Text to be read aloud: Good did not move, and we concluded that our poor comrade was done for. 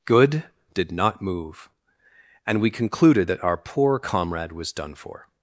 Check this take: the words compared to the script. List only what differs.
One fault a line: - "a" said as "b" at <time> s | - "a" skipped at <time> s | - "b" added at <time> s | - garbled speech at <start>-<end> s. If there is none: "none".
none